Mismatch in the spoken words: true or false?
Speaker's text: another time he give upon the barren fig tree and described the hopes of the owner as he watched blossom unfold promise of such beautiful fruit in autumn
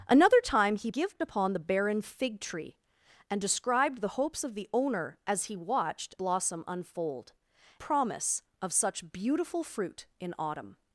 false